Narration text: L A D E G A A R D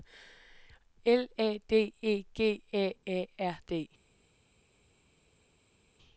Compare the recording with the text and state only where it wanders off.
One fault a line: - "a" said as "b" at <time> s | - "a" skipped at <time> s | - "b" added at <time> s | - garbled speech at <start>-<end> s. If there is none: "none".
none